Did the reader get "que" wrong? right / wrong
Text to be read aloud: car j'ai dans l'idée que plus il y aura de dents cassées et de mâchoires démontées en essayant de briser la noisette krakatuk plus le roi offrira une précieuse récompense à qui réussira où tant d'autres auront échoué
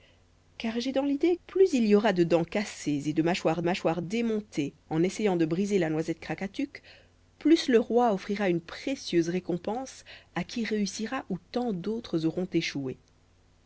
wrong